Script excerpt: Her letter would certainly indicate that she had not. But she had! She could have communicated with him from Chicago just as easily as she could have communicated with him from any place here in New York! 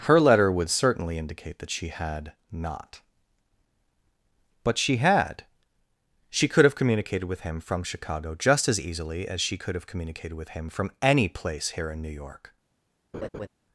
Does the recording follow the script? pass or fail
pass